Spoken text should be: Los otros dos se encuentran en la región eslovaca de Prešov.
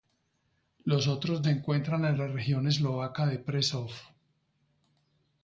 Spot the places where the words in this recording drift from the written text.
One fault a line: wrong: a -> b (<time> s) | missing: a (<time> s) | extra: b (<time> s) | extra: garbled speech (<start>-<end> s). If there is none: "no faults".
missing: dos (1.4 s)